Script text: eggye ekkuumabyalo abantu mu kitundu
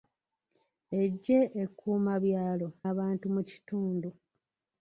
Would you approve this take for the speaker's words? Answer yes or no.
yes